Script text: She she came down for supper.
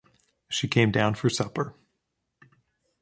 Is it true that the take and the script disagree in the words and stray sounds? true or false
true